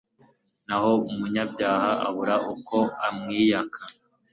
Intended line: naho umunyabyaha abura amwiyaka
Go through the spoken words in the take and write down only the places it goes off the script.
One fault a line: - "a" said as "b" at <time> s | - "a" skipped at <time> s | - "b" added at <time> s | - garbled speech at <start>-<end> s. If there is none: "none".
- "uko" added at 2.5 s